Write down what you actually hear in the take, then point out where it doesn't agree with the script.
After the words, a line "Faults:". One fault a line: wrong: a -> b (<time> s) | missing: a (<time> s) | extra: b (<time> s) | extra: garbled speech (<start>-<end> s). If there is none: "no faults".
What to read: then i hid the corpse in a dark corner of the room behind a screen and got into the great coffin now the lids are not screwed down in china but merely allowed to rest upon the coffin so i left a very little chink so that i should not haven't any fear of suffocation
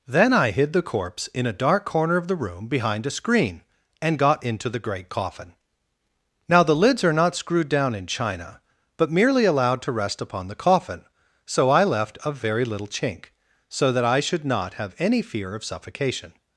then i hid the corpse in a dark corner of the room behind a screen and got into the great coffin now the lids are not screwed down in china but merely allowed to rest upon the coffin so i left a very little chink so that i should not have any fear of suffocation
Faults:
wrong: haven't -> have (14.7 s)